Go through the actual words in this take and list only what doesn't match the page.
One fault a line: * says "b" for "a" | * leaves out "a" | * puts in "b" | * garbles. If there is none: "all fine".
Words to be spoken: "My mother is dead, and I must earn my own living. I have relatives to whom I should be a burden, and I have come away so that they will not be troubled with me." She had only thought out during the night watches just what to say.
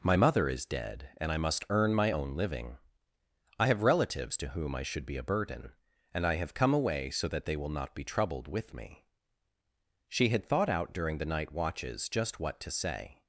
* leaves out "only"